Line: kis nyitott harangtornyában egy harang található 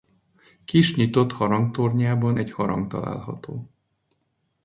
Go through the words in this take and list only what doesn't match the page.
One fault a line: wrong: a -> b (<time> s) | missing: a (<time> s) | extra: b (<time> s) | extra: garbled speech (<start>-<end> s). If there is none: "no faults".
no faults